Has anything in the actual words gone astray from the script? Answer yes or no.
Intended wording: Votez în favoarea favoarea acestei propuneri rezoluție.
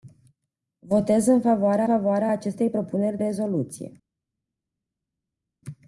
no